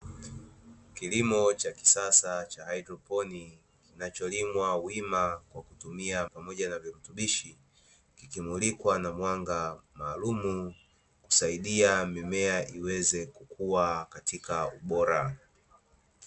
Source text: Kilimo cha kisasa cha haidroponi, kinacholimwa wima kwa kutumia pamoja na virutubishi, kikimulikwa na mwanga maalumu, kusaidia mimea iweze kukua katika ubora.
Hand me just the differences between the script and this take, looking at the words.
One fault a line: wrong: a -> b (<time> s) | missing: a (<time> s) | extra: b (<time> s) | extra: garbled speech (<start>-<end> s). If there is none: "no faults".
no faults